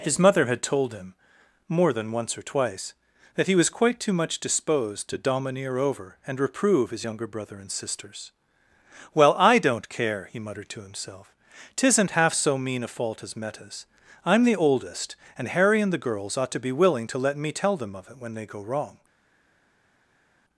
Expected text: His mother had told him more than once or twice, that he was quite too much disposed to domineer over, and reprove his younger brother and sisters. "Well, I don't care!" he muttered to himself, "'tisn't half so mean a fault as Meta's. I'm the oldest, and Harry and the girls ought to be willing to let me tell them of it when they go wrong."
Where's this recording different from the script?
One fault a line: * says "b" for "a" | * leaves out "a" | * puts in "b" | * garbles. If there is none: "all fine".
all fine